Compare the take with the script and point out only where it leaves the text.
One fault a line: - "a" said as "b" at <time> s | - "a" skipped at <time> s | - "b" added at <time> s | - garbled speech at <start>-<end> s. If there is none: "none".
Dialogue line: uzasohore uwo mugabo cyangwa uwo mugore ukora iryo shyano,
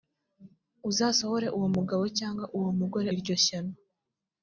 - "ukora" skipped at 3.1 s